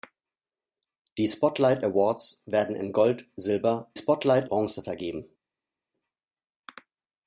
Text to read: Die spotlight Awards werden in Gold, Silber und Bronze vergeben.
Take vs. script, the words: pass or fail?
fail